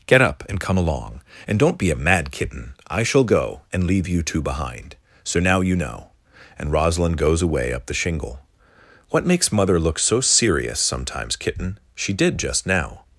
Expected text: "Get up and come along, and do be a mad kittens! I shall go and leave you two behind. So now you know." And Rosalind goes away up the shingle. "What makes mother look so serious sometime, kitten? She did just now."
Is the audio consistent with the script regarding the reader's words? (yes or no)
no